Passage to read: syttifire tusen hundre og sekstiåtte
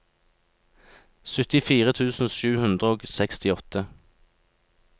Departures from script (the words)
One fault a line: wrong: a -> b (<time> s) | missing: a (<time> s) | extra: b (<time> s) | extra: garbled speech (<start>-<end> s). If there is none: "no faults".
extra: sju (2.4 s)